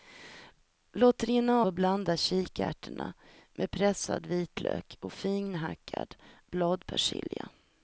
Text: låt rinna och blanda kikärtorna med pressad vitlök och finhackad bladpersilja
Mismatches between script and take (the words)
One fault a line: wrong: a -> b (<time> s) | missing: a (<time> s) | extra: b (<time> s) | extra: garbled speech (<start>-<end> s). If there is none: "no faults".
no faults